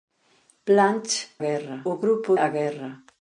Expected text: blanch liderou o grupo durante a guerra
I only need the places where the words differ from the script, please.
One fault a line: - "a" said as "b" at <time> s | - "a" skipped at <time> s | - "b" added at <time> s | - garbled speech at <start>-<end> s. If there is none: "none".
- "liderou" said as "guerra" at 1.4 s
- "durante" skipped at 2.4 s